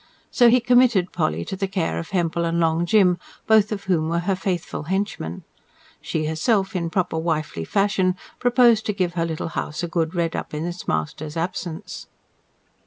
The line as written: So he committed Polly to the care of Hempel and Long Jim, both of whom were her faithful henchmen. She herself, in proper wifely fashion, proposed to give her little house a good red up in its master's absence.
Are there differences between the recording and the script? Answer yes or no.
no